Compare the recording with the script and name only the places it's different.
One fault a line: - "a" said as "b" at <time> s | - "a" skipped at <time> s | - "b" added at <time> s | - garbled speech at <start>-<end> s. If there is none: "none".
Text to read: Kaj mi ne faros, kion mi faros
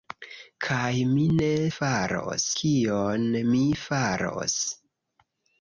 none